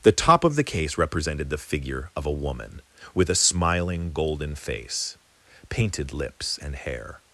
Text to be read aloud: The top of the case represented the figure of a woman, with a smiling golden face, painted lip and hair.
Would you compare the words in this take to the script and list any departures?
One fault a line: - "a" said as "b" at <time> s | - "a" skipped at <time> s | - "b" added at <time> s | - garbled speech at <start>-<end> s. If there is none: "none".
- "lip" said as "lips" at 6.1 s